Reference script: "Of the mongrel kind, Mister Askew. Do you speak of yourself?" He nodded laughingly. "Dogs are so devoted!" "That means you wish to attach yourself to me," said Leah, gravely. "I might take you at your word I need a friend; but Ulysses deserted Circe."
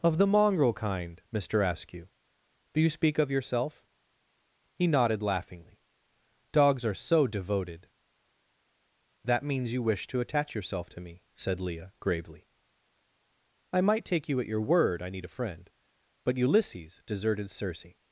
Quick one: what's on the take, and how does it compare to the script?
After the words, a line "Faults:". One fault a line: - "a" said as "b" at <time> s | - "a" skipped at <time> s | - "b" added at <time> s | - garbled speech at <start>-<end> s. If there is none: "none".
"Of the mongrel kind, Mister Askew. Do you speak of yourself?" He nodded laughingly. "Dogs are so devoted!" "That means you wish to attach yourself to me," said Leah, gravely. "I might take you at your word I need a friend; but Ulysses deserted Circe."
Faults:
none